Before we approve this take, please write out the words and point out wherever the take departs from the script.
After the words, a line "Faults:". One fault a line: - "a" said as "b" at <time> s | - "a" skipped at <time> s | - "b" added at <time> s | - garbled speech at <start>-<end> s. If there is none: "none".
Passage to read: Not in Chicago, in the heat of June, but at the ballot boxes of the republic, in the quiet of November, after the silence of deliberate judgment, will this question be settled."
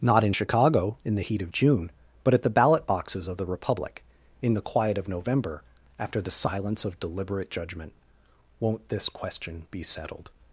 Not in Chicago, in the heat of June, but at the ballot boxes of the republic, in the quiet of November, after the silence of deliberate judgment, won't this question be settled."
Faults:
- "will" said as "won't" at 8.6 s